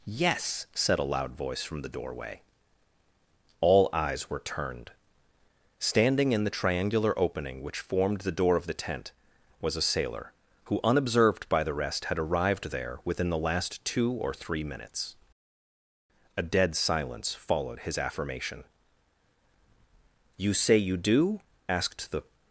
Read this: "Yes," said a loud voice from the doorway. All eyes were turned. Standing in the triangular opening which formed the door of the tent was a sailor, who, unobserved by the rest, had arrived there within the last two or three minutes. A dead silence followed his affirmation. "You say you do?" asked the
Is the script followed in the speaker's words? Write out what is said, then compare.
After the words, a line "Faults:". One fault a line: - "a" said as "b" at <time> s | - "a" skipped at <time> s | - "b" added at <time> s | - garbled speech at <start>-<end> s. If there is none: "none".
"Yes," said a loud voice from the doorway. All eyes were turned. Standing in the triangular opening which formed the door of the tent was a sailor, who, unobserved by the rest, had arrived there within the last two or three minutes. A dead silence followed his affirmation. "You say you do?" asked the
Faults:
none